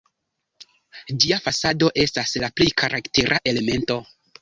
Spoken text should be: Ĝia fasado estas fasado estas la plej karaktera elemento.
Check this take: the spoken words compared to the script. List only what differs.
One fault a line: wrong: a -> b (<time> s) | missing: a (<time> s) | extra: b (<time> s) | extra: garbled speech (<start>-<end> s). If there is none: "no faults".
missing: fasado estas (2.4 s)